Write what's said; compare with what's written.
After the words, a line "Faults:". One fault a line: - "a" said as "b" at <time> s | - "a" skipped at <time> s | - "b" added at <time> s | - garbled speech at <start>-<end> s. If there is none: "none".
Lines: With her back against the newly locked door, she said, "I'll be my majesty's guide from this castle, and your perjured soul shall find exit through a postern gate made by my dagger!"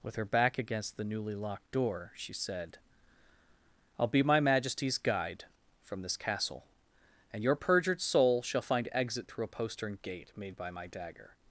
With her back against the newly locked door, she said, "I'll be my majesty's guide from this castle, and your perjured soul shall find exit through a postern gate made by my dagger!"
Faults:
none